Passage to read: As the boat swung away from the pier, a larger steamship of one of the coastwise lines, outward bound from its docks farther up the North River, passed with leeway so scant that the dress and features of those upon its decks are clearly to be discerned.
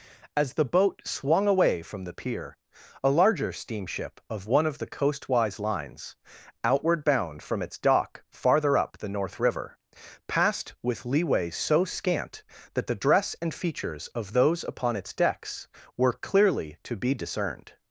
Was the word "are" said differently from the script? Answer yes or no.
yes